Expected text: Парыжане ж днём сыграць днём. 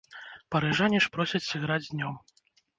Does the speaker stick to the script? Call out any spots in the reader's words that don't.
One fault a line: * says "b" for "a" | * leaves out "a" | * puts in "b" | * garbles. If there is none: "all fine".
* says "просяць" for "днём"